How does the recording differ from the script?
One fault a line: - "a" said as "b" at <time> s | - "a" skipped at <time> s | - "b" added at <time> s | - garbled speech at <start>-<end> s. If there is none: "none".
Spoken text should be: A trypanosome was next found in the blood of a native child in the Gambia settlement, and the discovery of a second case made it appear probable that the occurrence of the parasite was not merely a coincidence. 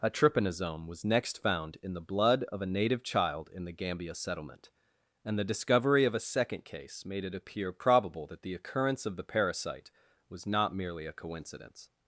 none